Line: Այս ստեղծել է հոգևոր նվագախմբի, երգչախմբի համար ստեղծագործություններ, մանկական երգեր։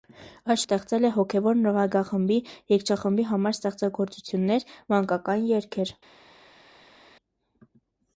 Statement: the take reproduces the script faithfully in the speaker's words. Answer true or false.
true